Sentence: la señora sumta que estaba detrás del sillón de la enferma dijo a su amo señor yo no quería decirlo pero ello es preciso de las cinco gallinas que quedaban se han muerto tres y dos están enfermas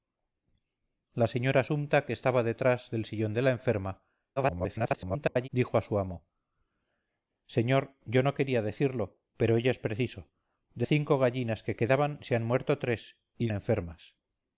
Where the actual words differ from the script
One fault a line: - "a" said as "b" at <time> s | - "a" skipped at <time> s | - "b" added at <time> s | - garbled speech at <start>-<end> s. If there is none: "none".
- garbled speech at 4.4-5.5 s
- "las" skipped at 10.9 s
- "dos están" skipped at 13.5 s